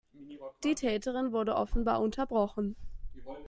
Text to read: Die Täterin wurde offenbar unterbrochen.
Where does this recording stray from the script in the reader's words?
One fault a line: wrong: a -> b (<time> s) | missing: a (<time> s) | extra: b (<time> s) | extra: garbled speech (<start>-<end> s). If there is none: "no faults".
no faults